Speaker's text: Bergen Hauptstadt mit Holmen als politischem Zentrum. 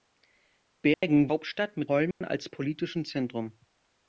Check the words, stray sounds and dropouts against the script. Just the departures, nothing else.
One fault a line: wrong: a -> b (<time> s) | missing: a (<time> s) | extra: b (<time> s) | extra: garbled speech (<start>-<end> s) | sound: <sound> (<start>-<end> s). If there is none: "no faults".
sound: dropout (0.9-1.0 s)
sound: dropout (2.1-2.2 s)